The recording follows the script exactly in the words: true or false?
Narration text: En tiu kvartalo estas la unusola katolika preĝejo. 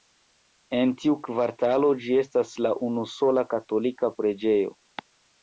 false